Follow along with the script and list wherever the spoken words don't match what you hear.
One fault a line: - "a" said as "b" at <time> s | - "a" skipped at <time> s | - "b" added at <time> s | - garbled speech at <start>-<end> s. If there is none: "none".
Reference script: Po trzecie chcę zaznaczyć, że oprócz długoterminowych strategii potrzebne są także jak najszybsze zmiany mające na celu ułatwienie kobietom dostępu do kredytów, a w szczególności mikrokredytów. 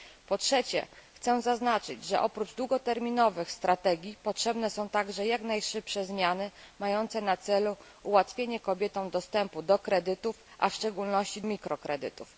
none